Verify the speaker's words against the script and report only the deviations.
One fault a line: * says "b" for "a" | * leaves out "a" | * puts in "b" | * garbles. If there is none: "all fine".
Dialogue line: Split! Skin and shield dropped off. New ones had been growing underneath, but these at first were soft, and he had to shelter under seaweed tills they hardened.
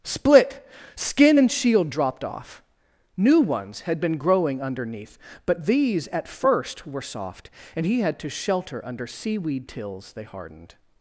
all fine